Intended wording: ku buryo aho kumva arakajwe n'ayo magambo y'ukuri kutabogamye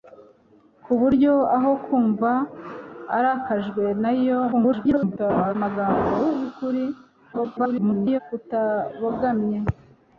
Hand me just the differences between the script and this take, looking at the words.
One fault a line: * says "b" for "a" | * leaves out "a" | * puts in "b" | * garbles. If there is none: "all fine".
* garbles
* garbles